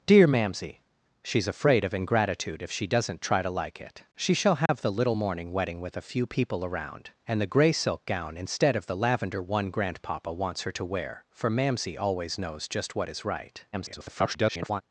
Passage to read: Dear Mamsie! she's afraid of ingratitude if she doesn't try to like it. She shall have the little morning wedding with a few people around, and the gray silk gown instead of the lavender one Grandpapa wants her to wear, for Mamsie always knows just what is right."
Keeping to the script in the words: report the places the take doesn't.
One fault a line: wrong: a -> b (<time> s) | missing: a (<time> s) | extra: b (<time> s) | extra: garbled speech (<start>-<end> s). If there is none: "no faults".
extra: garbled speech (13.7-14.8 s)